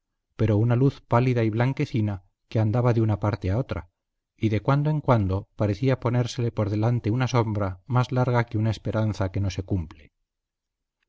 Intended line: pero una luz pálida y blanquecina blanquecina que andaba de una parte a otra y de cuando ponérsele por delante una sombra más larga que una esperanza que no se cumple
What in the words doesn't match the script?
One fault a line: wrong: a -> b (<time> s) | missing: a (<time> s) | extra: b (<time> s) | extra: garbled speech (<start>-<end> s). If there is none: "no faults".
missing: blanquecina (2.2 s)
extra: en cuando parecía (4.9 s)